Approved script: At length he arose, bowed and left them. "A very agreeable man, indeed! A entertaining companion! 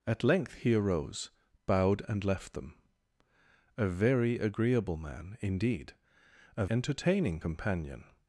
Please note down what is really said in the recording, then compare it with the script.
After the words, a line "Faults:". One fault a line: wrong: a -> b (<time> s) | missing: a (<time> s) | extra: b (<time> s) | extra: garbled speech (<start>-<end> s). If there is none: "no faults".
At length he arose, bowed and left them. "A very agreeable man, indeed! A entertaining companion!
Faults:
no faults